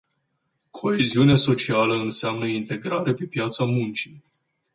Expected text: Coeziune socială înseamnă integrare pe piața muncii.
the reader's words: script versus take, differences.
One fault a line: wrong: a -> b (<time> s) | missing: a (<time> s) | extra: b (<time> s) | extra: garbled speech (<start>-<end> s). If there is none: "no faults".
no faults